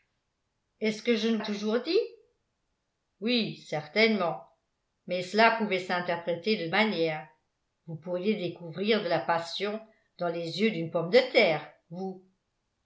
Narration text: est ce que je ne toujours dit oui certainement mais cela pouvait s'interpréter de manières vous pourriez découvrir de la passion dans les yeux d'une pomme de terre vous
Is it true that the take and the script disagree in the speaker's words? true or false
false